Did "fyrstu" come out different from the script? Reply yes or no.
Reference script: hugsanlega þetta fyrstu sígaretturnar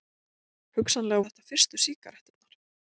no